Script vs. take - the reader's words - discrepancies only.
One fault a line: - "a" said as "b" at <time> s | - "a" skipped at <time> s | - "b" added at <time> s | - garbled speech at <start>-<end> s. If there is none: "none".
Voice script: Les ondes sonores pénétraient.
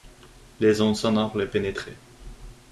- "le" added at 1.4 s